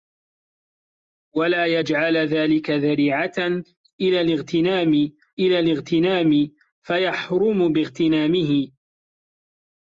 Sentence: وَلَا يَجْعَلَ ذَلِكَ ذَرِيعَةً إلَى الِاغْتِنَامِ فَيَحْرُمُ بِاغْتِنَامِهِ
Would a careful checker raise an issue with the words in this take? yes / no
yes